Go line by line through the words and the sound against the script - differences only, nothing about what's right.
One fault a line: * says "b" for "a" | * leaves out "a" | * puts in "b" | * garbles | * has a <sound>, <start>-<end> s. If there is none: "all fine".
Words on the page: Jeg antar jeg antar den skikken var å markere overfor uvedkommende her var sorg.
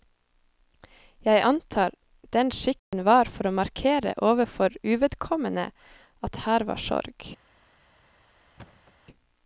* leaves out "jeg antar"
* has a dropout, 2.8-2.9 s
* puts in "for"
* puts in "at"
* has a thud, 8.6-8.9 s